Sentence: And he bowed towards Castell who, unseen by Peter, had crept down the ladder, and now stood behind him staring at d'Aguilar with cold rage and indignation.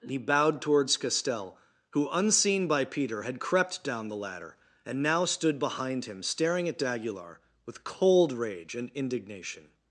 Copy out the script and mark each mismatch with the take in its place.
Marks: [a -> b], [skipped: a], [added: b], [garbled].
[skipped: And] he bowed towards Castell who, unseen by Peter, had crept down the ladder, and now stood behind him staring at d'Aguilar with cold rage and indignation.